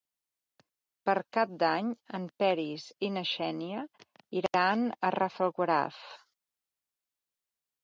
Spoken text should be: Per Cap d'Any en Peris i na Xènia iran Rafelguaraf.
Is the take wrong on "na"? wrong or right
right